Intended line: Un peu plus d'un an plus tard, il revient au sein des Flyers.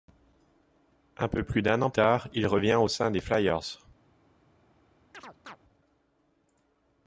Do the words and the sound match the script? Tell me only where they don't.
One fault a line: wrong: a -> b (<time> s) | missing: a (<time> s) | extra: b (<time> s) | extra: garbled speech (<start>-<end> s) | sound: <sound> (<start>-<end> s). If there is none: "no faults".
missing: plus (1.9 s)
sound: chirp (5.1-5.6 s)